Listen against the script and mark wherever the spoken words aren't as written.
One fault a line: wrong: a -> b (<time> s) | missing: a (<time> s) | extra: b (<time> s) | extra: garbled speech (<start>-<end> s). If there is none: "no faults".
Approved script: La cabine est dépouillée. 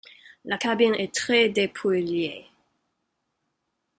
extra: très (1.1 s)